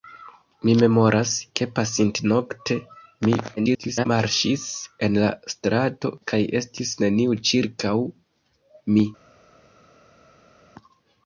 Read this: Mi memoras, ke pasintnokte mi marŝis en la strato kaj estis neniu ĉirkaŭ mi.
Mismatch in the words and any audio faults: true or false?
true